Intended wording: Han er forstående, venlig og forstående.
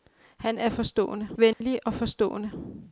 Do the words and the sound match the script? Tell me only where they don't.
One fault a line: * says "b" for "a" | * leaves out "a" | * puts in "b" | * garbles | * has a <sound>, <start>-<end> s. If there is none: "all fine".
* has a dropout, 1.5-1.6 s